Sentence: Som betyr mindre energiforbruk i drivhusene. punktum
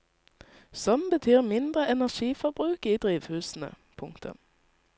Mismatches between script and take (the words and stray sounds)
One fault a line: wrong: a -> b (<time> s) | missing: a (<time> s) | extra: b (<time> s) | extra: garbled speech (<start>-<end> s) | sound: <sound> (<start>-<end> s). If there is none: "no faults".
no faults